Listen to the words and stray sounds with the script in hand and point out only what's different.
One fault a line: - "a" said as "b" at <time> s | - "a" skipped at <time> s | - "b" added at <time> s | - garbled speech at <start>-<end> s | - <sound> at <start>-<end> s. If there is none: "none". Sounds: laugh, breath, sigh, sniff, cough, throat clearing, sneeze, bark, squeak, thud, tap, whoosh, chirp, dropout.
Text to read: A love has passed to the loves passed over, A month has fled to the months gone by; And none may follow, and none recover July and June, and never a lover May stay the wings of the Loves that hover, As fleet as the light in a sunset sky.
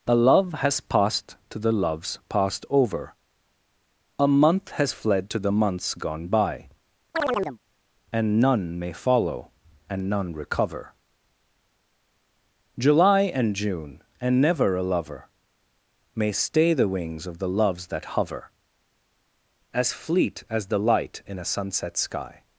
- chirp at 7.1-7.6 s